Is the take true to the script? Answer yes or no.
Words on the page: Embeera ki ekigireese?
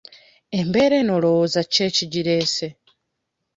no